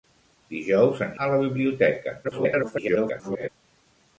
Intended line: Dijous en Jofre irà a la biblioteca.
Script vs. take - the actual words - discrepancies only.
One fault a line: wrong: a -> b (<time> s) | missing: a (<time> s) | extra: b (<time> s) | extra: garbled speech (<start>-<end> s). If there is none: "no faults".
missing: Jofre irà (1.1 s)
extra: garbled speech (2.2-3.5 s)